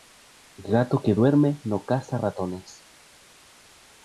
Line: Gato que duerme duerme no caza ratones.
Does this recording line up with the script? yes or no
no